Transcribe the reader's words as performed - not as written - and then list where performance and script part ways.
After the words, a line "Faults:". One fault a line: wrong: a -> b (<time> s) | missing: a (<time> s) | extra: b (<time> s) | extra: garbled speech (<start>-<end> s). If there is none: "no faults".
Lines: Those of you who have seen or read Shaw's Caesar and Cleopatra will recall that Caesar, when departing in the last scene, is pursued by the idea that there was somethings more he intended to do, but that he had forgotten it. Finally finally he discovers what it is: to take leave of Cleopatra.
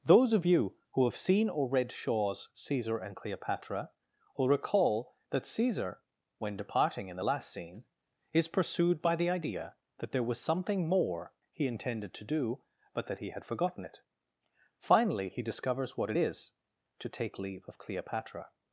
Those of you who have seen or read Shaw's Caesar and Cleopatra will recall that Caesar, when departing in the last scene, is pursued by the idea that there was something more he intended to do, but that he had forgotten it. Finally he discovers what it is: to take leave of Cleopatra.
Faults:
wrong: somethings -> something (10.4 s)
missing: finally (15.3 s)